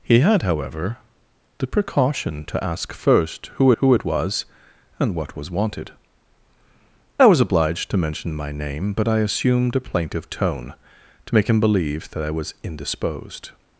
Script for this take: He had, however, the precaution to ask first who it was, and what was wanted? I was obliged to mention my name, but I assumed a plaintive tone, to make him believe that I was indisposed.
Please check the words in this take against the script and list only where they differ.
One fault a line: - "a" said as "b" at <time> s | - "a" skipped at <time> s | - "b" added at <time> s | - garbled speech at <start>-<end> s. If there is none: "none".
- "who" added at 3.8 s